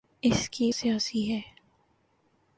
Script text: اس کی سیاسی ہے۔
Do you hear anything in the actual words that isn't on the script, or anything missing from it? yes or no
no